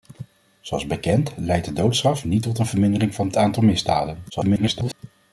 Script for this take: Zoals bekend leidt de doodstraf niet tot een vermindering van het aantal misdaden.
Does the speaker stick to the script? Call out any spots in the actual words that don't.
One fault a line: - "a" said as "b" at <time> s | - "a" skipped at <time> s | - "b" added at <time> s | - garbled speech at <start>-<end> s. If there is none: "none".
- garbled speech at 4.3-4.9 s